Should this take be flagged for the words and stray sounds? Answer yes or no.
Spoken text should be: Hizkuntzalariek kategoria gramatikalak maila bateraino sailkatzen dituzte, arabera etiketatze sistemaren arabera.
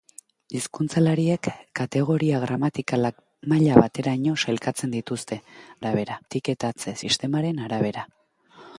no